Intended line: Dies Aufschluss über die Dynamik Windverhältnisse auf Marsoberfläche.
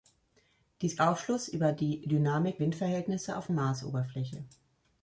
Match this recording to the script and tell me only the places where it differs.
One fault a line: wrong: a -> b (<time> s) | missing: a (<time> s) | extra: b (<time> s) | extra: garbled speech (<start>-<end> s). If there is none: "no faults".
no faults